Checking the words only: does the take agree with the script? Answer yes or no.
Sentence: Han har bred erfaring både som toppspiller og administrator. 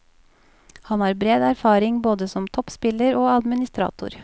yes